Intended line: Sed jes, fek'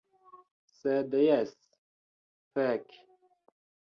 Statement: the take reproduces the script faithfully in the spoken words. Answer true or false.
true